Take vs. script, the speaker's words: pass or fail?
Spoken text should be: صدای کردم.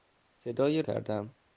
pass